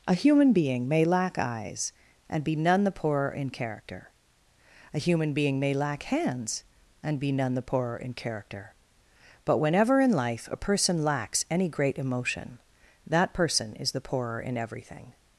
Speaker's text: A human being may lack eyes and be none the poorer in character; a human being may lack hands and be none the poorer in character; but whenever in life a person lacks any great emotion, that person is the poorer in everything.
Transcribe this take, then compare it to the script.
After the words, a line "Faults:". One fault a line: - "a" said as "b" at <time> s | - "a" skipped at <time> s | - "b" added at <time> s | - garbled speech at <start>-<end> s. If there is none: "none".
A human being may lack eyes and be none the poorer in character; a human being may lack hands and be none the poorer in character; but whenever in life a person lacks any great emotion, that person is the poorer in everything.
Faults:
none